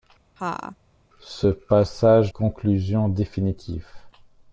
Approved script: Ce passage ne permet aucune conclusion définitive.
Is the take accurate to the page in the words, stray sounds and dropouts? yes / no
no